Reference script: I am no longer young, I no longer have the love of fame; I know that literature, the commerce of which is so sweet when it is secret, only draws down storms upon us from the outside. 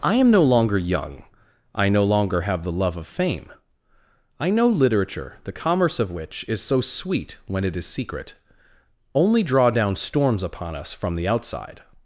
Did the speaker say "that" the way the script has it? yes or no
no